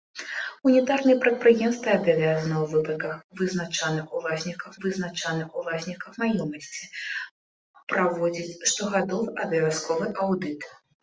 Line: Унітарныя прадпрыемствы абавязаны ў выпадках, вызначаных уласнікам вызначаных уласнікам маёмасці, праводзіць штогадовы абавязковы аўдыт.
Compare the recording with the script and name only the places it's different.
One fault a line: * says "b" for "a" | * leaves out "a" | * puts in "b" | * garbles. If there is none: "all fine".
all fine